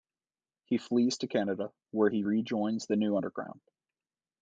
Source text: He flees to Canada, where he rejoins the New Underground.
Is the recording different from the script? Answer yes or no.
no